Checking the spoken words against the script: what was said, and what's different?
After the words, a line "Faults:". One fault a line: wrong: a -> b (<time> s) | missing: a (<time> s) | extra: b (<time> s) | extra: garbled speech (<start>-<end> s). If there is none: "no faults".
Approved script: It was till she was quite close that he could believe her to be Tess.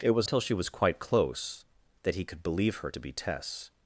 It was till she was quite close that he could believe her to be Tess.
Faults:
no faults